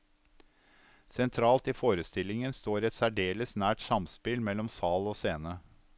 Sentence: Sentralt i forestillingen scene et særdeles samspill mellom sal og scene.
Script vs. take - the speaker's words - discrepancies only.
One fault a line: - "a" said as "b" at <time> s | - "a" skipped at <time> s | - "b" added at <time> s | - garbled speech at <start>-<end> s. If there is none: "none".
- "scene" said as "står" at 2.6 s
- "nært" added at 3.6 s